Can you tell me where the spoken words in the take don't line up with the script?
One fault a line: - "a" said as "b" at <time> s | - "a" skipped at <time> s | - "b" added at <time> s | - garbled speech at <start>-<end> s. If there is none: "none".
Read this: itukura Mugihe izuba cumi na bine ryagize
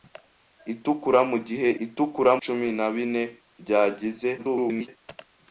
- "izuba" said as "itukura" at 1.9 s
- garbled speech at 4.4-4.9 s